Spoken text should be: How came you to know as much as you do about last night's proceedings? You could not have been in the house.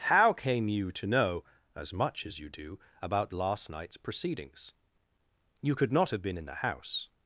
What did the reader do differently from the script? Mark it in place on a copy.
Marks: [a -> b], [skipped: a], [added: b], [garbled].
How came you to know as much as you do about last night's proceedings? You could not have been in the house.